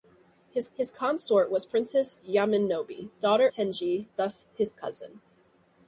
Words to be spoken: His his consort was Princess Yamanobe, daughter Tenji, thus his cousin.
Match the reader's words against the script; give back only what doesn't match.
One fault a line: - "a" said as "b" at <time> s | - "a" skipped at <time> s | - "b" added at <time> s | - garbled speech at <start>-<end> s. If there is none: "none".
none